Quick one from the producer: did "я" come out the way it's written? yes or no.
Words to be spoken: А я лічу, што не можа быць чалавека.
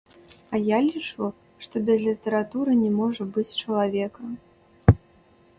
yes